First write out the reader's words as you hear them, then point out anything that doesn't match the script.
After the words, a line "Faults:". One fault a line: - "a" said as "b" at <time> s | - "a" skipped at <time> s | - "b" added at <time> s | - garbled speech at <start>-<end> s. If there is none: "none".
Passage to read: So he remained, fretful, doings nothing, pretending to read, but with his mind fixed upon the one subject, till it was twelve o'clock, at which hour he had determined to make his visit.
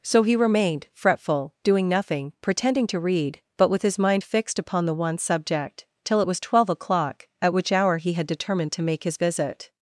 So he remained, fretful, doing nothing, pretending to read, but with his mind fixed upon the one subject, till it was twelve o'clock, at which hour he had determined to make his visit.
Faults:
- "doings" said as "doing" at 1.6 s